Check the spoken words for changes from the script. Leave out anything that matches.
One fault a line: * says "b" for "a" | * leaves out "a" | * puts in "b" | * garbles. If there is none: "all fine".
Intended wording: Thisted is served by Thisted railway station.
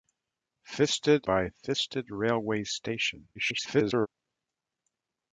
* leaves out "is served"
* garbles